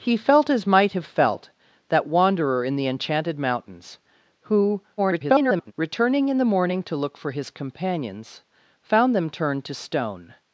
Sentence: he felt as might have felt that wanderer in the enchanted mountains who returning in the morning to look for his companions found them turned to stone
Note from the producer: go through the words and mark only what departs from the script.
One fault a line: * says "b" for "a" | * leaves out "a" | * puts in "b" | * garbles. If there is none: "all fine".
* garbles